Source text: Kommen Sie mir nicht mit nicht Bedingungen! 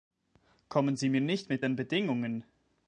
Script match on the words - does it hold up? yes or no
no